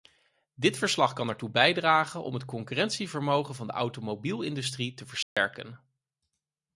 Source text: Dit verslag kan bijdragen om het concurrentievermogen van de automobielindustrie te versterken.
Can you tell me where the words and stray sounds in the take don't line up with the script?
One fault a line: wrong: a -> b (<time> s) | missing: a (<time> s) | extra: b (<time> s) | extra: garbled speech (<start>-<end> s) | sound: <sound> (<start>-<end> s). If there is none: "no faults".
extra: ertoe (1.3 s)
sound: dropout (5.2-5.4 s)